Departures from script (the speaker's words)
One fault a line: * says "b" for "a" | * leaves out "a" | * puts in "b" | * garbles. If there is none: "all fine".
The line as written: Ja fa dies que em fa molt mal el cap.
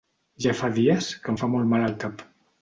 all fine